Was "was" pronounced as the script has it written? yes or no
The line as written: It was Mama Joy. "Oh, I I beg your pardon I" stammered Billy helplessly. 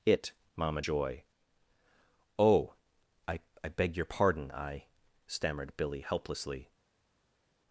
no